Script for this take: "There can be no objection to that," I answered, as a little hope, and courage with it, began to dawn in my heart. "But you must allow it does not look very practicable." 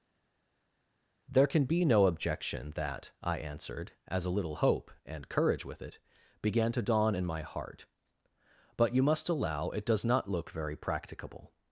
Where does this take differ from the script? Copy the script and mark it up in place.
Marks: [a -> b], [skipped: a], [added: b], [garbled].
"There can be no objection [skipped: to] that," I answered, as a little hope, and courage with it, began to dawn in my heart. "But you must allow it does not look very practicable."